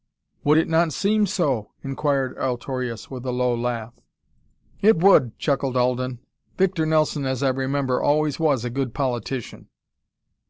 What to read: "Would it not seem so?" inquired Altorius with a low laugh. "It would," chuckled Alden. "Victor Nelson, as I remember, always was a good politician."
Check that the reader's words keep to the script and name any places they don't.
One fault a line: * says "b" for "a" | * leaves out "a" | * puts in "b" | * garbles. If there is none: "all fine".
all fine